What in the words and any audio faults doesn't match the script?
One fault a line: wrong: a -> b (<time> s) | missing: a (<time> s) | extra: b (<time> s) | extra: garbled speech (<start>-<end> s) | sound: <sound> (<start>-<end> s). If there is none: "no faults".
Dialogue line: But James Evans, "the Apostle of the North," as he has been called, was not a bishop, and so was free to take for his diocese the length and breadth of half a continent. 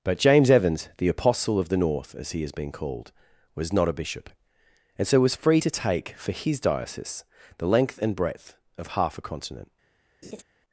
sound: laugh (10.2-10.4 s)